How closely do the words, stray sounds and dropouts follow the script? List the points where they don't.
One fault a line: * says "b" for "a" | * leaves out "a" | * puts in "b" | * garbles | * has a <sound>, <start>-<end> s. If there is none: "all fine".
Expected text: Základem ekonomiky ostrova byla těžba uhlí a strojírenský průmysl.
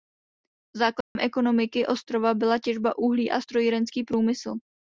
* has a dropout, 1.0-1.2 s